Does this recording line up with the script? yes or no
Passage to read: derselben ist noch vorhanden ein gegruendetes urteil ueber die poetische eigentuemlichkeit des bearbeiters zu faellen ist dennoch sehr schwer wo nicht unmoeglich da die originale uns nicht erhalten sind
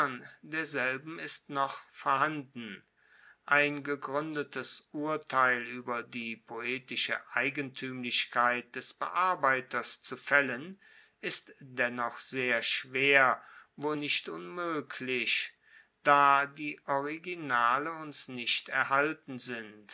yes